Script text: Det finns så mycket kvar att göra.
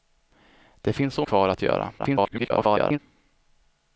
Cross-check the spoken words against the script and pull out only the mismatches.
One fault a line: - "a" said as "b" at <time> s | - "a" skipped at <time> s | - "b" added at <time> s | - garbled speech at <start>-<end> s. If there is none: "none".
- "mycket" skipped at 1.2 s
- garbled speech at 2.0-3.0 s